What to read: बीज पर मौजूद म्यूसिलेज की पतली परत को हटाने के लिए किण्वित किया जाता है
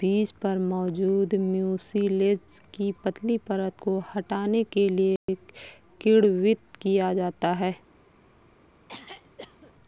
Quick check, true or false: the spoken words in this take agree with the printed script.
true